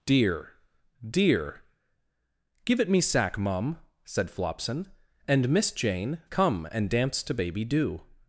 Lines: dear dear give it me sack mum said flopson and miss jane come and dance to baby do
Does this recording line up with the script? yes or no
yes